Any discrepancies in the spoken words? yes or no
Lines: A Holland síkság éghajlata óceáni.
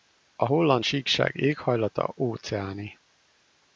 no